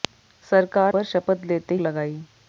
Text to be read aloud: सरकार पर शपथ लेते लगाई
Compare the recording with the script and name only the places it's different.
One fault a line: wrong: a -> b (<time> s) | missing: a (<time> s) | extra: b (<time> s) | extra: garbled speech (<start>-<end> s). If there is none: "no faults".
no faults